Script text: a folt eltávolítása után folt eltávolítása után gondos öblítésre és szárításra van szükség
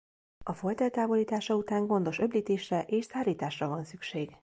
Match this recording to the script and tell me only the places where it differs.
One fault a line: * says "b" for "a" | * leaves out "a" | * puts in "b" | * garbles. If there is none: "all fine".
* leaves out "folt eltávolítása után"